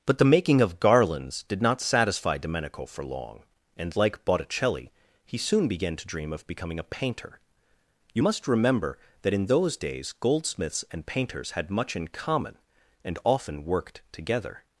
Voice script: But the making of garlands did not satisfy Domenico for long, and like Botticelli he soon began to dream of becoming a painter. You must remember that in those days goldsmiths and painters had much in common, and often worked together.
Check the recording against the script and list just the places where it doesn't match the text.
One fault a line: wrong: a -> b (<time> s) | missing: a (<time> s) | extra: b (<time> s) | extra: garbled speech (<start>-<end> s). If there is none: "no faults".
no faults